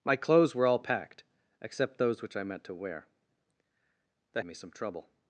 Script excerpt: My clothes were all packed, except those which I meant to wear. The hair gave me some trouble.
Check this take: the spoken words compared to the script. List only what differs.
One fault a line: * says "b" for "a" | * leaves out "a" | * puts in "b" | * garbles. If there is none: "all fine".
* leaves out "hair gave"